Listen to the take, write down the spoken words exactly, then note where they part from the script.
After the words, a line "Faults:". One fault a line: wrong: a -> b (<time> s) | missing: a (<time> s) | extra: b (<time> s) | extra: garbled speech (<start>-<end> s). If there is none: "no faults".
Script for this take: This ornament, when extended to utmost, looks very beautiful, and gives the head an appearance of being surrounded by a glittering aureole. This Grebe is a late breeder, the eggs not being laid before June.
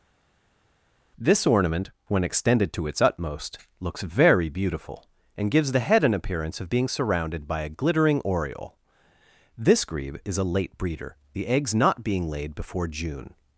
This ornament, when extended to its utmost, looks very beautiful, and gives the head an appearance of being surrounded by a glittering aureole. This Grebe is a late breeder, the eggs not being laid before June.
Faults:
extra: its (2.9 s)